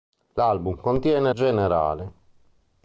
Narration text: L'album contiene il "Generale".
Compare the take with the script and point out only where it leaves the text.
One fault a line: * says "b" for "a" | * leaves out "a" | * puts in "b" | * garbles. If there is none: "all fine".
all fine